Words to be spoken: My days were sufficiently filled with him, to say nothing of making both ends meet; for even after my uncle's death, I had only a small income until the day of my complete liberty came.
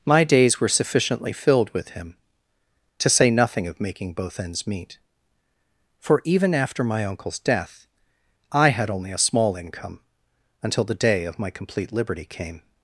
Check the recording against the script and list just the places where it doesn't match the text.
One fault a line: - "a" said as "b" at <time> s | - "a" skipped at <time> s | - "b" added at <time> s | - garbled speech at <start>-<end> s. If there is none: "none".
none